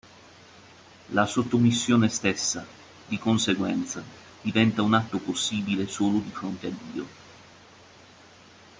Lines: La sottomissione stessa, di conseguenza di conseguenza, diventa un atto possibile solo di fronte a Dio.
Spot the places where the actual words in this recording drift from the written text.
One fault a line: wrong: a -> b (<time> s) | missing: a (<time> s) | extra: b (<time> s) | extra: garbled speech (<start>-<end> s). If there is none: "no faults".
missing: di conseguenza (4.0 s)